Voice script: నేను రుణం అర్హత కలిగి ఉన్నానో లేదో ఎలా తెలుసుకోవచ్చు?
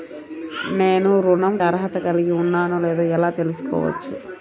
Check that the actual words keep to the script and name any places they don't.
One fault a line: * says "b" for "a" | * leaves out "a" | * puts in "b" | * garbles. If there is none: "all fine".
all fine